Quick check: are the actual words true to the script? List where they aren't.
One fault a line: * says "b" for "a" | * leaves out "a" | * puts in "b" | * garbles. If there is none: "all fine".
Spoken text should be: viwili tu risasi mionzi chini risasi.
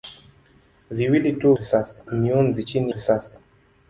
all fine